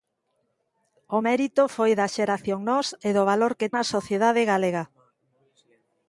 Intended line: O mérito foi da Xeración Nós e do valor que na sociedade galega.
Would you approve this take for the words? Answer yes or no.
yes